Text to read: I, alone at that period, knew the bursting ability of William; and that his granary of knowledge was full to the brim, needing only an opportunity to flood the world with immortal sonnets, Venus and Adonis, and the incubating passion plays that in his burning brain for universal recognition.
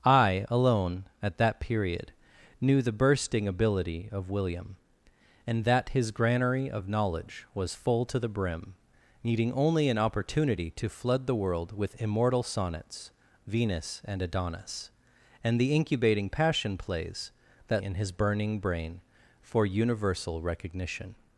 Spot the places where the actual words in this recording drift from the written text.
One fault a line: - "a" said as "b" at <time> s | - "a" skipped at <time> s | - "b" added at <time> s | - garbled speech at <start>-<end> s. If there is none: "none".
none